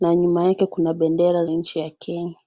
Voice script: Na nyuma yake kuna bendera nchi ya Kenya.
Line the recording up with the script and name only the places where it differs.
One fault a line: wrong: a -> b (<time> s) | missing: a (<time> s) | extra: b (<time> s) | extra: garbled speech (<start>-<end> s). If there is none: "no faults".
no faults